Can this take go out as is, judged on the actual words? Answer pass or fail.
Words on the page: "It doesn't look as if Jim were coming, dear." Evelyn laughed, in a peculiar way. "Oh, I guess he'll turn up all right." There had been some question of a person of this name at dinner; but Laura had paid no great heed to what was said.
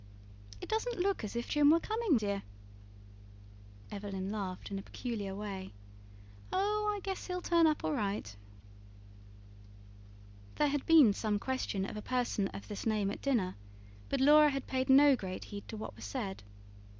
pass